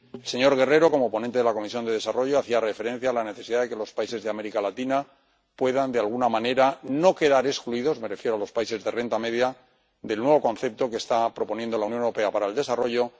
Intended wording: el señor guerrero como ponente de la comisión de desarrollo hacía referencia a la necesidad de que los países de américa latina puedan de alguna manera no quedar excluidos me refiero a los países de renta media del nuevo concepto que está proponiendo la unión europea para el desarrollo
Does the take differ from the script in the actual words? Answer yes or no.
no